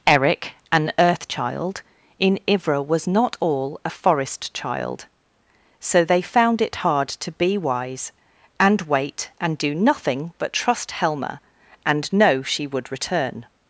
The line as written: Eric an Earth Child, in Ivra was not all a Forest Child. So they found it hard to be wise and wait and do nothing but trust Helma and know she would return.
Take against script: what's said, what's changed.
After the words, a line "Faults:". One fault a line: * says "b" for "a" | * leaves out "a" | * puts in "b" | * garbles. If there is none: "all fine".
Eric an Earth Child, in Ivra was not all a Forest Child. So they found it hard to be wise and wait and do nothing but trust Helma and know she would return.
Faults:
all fine